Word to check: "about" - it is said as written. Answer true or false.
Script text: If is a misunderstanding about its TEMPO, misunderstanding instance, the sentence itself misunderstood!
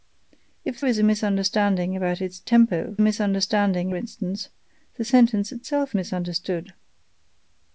true